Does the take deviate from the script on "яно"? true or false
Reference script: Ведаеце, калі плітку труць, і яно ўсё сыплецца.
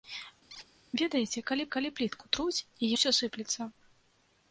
true